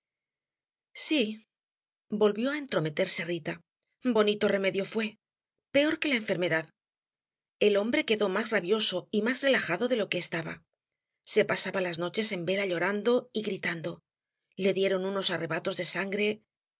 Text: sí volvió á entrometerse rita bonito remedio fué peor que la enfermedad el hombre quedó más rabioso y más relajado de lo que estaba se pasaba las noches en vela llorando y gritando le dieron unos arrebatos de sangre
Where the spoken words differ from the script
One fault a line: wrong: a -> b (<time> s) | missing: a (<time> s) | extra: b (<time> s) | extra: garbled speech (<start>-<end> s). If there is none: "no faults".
no faults